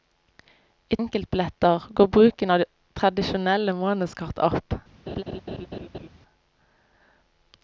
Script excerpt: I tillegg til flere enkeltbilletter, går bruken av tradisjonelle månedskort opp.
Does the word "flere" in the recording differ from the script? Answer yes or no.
yes